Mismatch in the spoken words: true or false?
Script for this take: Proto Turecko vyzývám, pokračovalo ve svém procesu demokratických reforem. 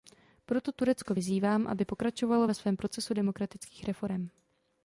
true